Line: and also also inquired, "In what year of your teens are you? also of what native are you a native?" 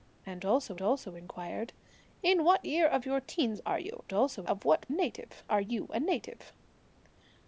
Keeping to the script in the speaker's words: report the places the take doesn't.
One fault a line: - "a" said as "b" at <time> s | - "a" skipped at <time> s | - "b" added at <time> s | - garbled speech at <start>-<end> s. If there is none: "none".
none